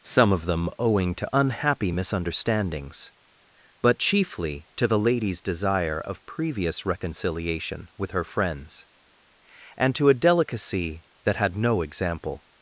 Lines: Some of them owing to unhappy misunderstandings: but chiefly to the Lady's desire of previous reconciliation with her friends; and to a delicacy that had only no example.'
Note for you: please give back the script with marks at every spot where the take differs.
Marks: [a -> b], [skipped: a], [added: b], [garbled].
Some of them owing to unhappy misunderstandings: but chiefly to the Lady's desire of previous reconciliation with her friends; and to a delicacy that had [skipped: only] no example.'